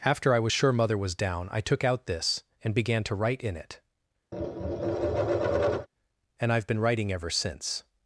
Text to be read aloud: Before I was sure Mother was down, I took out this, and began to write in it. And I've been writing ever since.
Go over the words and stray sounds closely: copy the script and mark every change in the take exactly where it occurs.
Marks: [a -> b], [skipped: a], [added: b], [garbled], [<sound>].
[Before -> After] I was sure Mother was down, I took out this, and began to write in it. [tap] And I've been writing ever since.